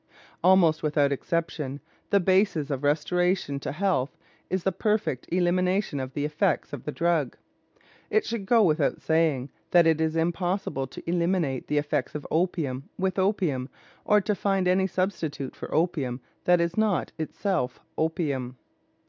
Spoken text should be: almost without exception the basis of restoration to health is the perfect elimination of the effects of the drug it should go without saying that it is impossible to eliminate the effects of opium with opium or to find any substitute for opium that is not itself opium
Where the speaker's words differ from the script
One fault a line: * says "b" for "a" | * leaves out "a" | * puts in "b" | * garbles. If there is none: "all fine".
all fine